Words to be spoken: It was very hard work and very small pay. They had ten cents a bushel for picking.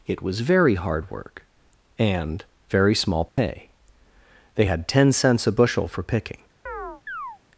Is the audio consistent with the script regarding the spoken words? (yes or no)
yes